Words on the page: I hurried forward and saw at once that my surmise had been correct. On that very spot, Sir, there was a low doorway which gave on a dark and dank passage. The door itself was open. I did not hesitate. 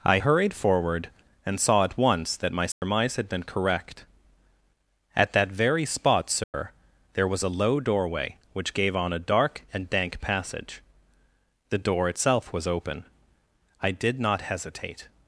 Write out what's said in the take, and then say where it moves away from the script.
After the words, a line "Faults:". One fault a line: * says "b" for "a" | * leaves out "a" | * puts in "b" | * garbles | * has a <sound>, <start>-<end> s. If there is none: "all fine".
I hurried forward and saw at once that my surmise had been correct. At that very spot, Sir, there was a low doorway which gave on a dark and dank passage. The door itself was open. I did not hesitate.
Faults:
* has a dropout, 2.7-2.8 s
* says "At" for "On"
* has a dropout, 6.4-6.5 s